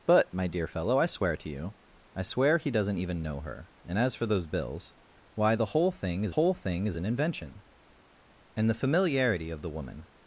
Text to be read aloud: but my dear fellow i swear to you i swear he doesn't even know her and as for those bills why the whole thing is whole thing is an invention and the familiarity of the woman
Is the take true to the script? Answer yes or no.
yes